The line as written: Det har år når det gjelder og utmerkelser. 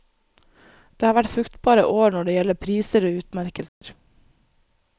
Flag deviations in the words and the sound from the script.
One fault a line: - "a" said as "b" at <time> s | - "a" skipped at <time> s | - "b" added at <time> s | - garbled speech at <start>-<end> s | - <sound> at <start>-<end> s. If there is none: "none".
- "vært fruktbare" added at 1.2 s
- "priser" added at 2.6 s
- dropout at 3.7-3.8 s